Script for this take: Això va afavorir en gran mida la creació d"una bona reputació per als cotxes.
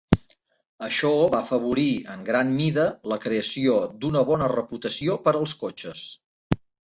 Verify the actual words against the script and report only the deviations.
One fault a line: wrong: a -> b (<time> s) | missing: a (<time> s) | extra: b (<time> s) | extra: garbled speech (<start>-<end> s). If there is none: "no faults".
no faults